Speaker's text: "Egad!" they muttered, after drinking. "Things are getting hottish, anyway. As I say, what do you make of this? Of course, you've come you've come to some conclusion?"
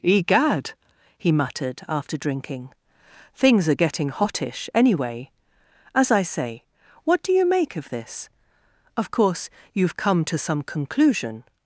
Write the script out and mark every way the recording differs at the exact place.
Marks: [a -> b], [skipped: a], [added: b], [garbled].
"Egad!" [they -> he] muttered, after drinking. "Things are getting hottish, anyway. As I say, what do you make of this? Of course, you've come [skipped: you've come] to some conclusion?"